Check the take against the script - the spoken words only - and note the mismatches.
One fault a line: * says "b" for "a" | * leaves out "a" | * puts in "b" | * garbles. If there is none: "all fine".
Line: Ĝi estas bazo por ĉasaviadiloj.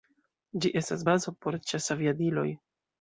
all fine